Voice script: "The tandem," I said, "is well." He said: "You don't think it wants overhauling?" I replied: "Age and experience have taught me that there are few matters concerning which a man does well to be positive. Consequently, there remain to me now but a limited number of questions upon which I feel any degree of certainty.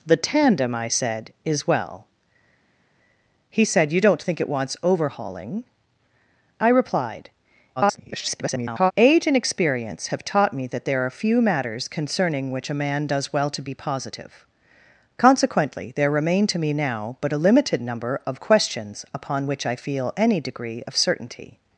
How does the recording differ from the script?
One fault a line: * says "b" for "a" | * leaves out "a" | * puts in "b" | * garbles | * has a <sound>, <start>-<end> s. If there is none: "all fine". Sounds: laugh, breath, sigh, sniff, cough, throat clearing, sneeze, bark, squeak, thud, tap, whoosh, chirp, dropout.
* garbles